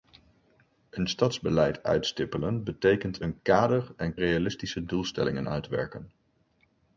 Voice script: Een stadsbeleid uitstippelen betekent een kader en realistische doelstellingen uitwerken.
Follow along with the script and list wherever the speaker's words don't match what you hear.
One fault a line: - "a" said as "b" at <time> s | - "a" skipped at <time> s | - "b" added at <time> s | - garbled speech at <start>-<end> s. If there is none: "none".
none